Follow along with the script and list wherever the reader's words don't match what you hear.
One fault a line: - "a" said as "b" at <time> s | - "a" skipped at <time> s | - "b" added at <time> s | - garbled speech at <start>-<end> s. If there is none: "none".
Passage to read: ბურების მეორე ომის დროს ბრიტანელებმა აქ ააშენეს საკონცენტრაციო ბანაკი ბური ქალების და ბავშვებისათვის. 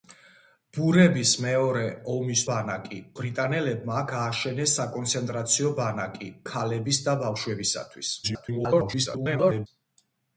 - "დროს" said as "ბანაკი" at 2.5 s
- "ბური" skipped at 6.3 s
- garbled speech at 8.2-9.7 s